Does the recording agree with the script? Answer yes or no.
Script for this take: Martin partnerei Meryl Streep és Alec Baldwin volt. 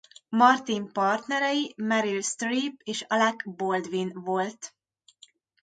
yes